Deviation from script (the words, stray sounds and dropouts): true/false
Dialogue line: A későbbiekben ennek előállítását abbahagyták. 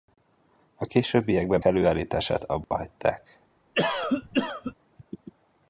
true